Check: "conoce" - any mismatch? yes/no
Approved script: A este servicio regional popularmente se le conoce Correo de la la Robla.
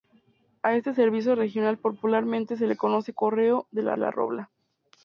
no